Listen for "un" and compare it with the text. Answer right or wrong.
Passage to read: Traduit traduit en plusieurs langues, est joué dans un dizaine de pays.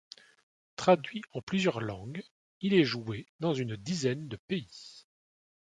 wrong